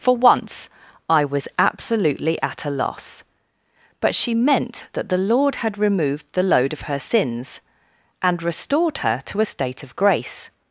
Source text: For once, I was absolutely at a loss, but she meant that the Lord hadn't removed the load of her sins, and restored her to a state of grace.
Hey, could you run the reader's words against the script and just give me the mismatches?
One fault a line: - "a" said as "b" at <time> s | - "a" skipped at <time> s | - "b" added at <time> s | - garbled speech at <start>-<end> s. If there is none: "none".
- "hadn't" said as "had" at 5.6 s